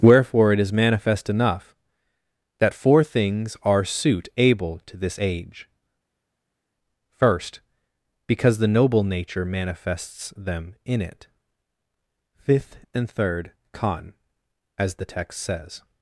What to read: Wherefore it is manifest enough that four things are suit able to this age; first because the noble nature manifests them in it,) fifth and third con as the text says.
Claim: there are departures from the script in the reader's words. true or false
false